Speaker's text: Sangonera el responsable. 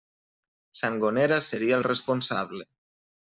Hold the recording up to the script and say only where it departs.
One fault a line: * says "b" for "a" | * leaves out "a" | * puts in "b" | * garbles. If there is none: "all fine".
* puts in "seria"